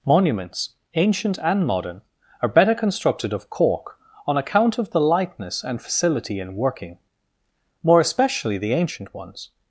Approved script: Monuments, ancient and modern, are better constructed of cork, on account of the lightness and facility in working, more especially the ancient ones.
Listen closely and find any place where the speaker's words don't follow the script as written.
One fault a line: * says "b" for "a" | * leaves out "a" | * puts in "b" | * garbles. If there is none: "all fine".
all fine